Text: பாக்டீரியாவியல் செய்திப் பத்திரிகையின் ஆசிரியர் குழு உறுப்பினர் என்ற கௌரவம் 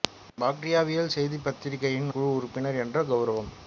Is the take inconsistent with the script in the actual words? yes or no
yes